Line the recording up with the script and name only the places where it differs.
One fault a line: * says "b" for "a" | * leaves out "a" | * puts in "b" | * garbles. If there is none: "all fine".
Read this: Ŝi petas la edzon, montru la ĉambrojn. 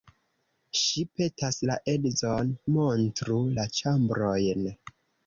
all fine